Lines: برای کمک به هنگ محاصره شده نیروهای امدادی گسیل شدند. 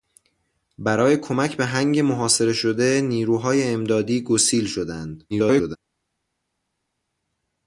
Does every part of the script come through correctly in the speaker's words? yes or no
no